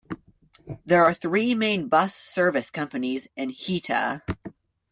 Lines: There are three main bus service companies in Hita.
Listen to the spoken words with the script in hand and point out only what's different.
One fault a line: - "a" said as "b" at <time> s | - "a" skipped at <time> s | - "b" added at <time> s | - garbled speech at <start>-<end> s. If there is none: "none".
none